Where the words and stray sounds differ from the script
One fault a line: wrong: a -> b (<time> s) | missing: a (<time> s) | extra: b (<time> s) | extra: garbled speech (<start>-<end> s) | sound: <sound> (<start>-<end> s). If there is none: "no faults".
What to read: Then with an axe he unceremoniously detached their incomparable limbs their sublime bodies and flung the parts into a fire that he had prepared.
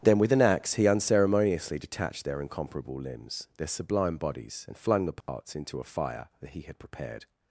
sound: dropout (5.2-5.3 s)